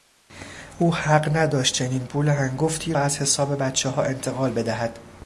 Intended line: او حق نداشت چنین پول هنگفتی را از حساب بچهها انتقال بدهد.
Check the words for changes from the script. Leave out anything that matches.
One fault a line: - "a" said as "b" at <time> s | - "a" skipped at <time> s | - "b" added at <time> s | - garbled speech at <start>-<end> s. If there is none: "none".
- "را" skipped at 2.9 s